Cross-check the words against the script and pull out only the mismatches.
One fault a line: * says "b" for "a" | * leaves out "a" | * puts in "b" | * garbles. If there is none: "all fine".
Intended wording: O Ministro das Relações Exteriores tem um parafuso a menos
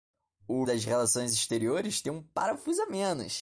* leaves out "Ministro"